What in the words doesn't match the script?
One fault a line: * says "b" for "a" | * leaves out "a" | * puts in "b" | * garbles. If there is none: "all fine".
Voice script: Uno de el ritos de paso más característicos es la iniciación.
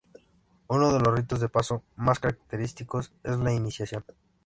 * says "los" for "el"